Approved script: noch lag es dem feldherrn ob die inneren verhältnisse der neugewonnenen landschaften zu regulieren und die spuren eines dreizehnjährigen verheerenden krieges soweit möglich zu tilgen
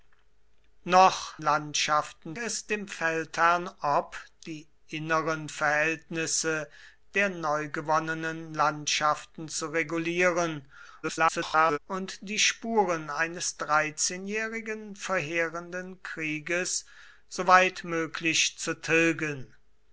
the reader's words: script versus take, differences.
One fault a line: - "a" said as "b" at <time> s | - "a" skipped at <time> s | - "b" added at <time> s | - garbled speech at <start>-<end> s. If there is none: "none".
- "lag" said as "landschaften" at 1.4 s
- garbled speech at 11.0-11.8 s